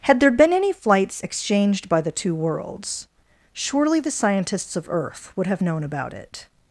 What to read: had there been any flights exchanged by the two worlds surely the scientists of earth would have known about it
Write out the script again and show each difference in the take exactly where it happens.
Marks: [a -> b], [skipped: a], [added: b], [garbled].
had there been any flights exchanged by the two worlds surely the scientists of earth would have known about it